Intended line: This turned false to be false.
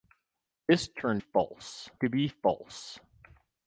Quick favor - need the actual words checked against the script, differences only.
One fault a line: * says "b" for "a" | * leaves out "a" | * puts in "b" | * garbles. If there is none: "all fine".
all fine